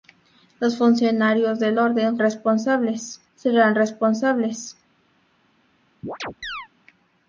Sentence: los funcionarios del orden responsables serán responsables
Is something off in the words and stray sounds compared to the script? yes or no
yes